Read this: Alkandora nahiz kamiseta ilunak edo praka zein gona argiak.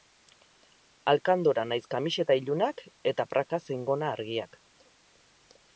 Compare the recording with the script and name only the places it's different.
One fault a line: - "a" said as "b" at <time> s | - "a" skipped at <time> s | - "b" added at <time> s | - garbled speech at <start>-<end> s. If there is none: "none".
- "edo" said as "eta" at 3.1 s